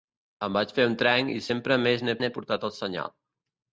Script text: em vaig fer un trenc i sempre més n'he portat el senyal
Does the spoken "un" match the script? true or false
true